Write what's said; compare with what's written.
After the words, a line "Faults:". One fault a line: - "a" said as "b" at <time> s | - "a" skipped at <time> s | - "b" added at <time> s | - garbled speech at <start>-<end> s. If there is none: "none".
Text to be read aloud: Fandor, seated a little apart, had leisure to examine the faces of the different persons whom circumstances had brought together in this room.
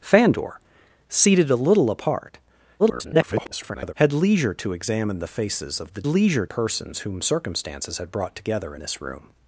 Fandor, seated a little apart, [garbled] had leisure to examine the faces of the leisure persons whom circumstances had brought together this room.
Faults:
- garbled speech at 2.8-3.9 s
- "different" said as "leisure" at 6.0 s
- "in" skipped at 8.8 s